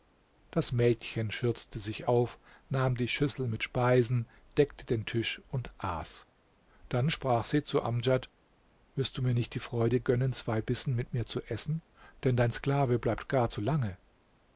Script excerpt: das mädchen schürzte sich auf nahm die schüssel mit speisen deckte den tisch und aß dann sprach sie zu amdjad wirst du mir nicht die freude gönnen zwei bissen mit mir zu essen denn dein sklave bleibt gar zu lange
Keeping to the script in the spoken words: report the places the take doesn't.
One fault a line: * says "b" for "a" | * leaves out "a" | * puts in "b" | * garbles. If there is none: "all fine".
all fine